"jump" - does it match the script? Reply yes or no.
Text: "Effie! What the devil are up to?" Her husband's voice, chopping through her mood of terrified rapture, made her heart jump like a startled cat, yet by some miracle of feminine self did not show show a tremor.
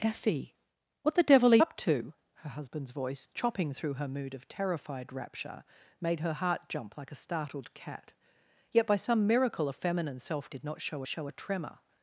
yes